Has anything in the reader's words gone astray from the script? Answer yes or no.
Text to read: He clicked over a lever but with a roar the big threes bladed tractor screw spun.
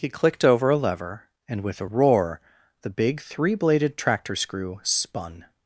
yes